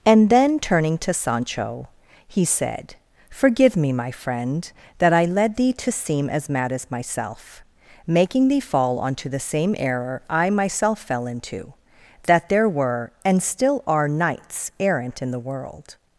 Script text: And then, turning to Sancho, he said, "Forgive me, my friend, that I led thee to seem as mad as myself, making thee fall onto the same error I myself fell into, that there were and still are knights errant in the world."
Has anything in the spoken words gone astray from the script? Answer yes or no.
no